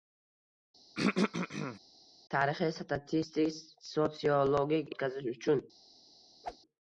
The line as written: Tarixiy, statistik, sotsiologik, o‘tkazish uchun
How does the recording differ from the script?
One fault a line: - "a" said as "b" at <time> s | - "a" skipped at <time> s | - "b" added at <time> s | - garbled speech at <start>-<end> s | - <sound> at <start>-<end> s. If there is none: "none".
- throat clearing at 1.0-1.8 s
- whoosh at 6.4-6.6 s